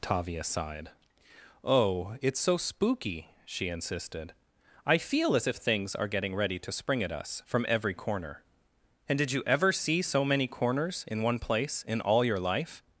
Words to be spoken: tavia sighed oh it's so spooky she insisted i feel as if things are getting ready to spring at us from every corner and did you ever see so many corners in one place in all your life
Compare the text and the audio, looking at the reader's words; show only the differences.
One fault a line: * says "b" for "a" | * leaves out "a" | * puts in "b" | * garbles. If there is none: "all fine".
all fine